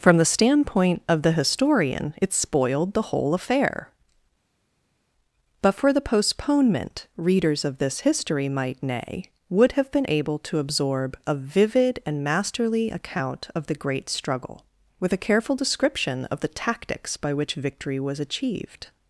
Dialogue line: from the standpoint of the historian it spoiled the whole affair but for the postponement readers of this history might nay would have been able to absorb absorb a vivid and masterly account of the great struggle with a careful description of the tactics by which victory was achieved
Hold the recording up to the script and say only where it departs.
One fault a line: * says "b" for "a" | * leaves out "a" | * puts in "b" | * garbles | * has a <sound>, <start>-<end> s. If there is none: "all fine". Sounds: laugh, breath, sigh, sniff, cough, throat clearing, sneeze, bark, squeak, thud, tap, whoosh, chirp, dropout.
* leaves out "absorb"